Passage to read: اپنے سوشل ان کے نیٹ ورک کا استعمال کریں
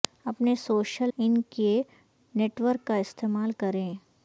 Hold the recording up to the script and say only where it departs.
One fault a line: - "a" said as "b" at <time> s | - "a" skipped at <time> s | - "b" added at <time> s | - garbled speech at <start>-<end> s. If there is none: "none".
none